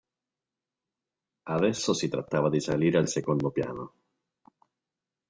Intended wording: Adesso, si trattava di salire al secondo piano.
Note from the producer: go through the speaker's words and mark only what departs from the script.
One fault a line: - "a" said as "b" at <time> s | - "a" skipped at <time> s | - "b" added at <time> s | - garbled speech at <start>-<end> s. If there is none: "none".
none